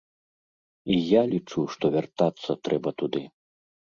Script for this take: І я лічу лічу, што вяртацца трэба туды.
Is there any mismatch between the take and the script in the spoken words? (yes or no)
yes